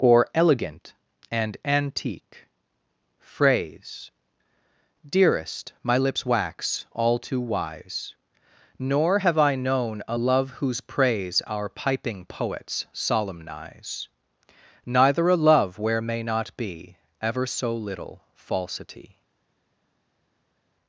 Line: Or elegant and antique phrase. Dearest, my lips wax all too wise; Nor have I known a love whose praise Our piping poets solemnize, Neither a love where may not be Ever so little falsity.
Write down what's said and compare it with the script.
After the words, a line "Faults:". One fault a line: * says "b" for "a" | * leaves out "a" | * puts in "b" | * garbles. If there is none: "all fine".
Or elegant and antique phrase. Dearest, my lips wax all too wise; Nor have I known a love whose praise Our piping poets solemnize, Neither a love where may not be Ever so little falsity.
Faults:
all fine